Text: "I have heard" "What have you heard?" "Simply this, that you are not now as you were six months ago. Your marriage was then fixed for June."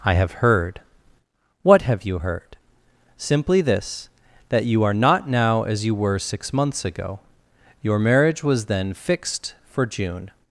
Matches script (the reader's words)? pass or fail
pass